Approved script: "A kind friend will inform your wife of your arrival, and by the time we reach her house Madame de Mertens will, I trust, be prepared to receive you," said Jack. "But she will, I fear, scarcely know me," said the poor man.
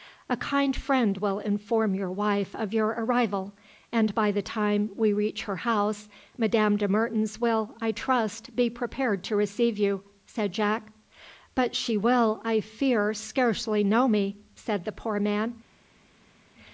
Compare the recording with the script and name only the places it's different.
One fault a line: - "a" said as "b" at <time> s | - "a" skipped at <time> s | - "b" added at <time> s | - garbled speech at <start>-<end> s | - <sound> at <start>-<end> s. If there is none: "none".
none